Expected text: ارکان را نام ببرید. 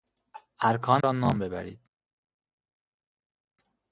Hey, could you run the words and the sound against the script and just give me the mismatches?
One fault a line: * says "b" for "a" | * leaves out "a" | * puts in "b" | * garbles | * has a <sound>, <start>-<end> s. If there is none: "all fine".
all fine